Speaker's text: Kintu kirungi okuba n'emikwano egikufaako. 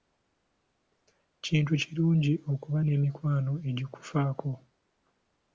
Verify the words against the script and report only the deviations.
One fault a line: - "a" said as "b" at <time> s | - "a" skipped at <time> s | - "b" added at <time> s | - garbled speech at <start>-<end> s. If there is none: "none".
none